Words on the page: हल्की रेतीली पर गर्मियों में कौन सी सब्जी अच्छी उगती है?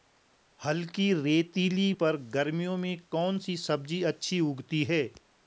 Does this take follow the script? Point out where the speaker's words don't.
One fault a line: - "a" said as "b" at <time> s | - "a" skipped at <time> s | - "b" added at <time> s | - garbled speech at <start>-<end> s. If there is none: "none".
none